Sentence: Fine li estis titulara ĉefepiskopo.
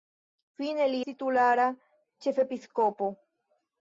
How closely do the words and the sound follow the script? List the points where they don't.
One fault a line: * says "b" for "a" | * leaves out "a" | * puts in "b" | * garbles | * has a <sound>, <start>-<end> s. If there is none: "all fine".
* leaves out "estis"